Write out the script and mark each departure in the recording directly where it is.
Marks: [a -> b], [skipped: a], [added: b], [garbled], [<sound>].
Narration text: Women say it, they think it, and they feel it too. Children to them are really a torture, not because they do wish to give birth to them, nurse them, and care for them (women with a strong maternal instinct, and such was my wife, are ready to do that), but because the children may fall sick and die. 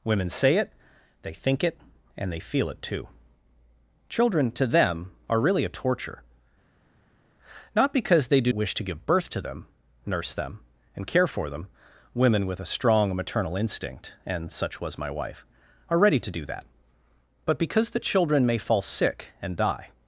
Women say it, they think it, and they feel it too. Children to them are really a torture, not because they do wish to give birth to them, nurse them, and care for them (women with a strong maternal instinct, and such was my wife, are ready to do that), but because the children may fall sick and die.